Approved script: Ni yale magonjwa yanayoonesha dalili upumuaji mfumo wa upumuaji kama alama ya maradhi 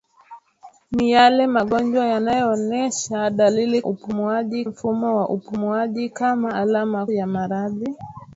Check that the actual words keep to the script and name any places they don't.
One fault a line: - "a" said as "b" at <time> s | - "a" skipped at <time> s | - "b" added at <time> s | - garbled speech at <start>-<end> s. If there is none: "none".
none